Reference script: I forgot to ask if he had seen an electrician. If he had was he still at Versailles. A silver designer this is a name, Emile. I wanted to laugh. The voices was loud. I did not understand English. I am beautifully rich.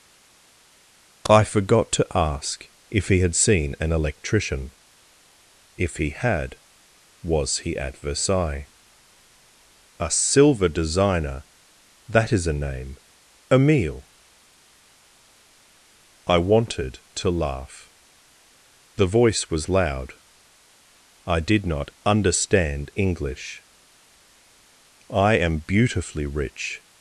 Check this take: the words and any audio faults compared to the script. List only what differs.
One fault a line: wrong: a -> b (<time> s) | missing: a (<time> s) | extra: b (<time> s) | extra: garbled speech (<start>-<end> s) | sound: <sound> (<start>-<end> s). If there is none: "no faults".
missing: still (7.8 s)
wrong: this -> that (12.1 s)
wrong: voices -> voice (19.1 s)